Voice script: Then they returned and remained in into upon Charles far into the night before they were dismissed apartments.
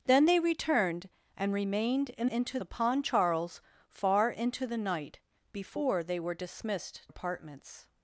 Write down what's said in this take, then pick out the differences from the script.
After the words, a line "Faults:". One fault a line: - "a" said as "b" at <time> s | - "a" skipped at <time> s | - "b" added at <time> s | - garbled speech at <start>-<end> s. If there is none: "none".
Then they returned and remained in into upon Charles far into the night before they were dismissed apartments.
Faults:
none